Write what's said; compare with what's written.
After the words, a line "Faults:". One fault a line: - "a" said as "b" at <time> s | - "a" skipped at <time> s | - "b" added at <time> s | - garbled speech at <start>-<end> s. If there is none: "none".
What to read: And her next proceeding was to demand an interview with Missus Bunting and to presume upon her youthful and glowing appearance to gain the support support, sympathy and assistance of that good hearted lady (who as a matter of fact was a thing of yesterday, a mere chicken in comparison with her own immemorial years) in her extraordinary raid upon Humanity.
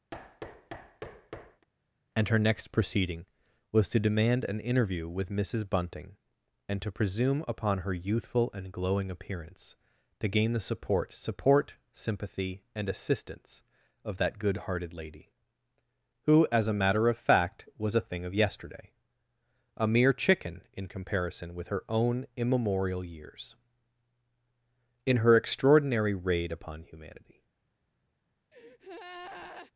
And her next proceeding was to demand an interview with Missus Bunting and to presume upon her youthful and glowing appearance to gain the support support, sympathy and assistance of that good hearted lady (who as a matter of fact was a thing of yesterday, a mere chicken in comparison with her own immemorial years) in her extraordinary raid upon Humanity.
Faults:
none